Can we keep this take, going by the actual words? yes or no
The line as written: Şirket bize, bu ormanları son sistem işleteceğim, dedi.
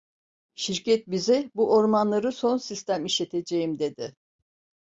yes